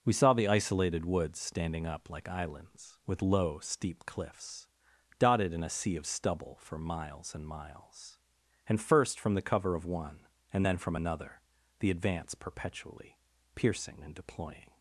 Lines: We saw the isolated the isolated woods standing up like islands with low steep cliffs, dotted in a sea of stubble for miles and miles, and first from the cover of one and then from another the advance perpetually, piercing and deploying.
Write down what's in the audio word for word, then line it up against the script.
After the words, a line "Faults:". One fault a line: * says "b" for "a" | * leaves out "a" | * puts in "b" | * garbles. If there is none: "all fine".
We saw the isolated woods standing up like islands with low steep cliffs, dotted in a sea of stubble for miles and miles, and first from the cover of one and then from another the advance perpetually, piercing and deploying.
Faults:
* leaves out "the isolated"